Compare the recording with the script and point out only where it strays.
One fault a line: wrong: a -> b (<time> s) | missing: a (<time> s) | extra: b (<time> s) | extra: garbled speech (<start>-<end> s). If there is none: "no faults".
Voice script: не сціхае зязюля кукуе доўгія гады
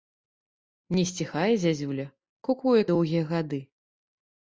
no faults